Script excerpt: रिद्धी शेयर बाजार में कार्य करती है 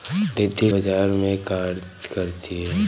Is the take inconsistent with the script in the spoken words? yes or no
yes